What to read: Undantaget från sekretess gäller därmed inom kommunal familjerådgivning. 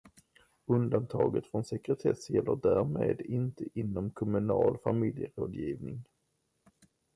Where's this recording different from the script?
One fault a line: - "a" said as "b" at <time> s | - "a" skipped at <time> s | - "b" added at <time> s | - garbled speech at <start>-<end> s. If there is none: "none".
- "inte" added at 3.2 s